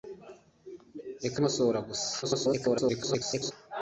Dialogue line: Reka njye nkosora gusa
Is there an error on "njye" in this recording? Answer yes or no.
yes